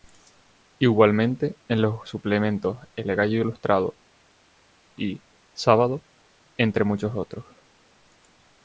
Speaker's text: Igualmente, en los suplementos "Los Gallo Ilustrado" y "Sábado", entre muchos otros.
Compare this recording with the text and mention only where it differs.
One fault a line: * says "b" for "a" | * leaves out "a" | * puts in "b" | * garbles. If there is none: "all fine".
* says "El" for "Los"